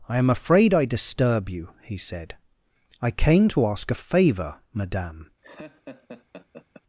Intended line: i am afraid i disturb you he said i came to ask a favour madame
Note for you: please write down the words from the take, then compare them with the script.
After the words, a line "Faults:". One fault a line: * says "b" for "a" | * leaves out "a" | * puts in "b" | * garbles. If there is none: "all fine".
i am afraid i disturb you he said i came to ask a favour madame
Faults:
all fine